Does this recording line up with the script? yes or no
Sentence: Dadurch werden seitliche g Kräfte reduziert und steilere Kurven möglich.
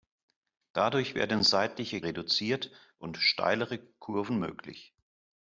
no